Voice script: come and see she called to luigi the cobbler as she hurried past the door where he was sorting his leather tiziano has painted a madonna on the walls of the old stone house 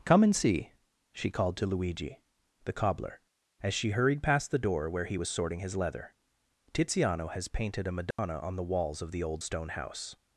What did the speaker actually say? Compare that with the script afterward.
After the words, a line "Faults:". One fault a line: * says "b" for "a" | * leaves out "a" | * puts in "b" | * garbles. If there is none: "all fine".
come and see she called to luigi the cobbler as she hurried past the door where he was sorting his leather tiziano has painted a madonna on the walls of the old stone house
Faults:
all fine